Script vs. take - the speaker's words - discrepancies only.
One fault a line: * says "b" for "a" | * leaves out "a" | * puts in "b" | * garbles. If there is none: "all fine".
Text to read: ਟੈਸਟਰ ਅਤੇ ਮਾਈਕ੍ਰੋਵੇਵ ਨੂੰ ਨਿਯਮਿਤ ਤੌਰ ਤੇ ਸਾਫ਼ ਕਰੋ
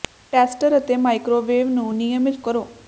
* leaves out "ਤੌਰ ਤੇ ਸਾਫ਼"